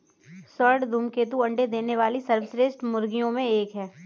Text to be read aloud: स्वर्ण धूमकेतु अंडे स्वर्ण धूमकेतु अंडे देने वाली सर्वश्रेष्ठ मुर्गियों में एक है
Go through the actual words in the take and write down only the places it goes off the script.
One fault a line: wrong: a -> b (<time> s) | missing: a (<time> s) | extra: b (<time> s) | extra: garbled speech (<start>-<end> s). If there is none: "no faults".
missing: स्वर्ण धूमकेतु अंडे (1.7 s)